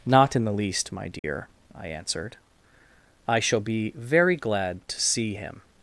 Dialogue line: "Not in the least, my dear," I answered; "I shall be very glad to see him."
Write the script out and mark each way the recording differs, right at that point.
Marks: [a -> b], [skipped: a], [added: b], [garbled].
"Not in the least, my dear," I answered; "I shall be very glad to see him."